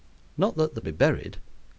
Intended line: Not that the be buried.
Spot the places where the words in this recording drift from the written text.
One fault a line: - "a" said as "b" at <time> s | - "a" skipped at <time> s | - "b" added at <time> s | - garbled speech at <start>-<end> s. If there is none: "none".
none